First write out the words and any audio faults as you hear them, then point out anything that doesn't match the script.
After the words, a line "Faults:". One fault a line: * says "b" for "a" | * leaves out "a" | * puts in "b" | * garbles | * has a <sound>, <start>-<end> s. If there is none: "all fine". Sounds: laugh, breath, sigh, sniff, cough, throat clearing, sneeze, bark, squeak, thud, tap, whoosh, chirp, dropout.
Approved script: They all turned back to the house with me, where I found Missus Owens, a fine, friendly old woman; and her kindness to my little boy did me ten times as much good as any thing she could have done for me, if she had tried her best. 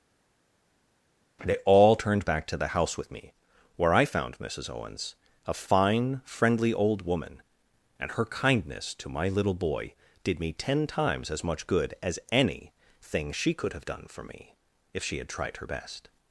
They all turned back to the house with me, where I found Missus Owens, a fine, friendly old woman; and her kindness to my little boy did me ten times as much good as any thing she could have done for me, if she had tried her best.
Faults:
all fine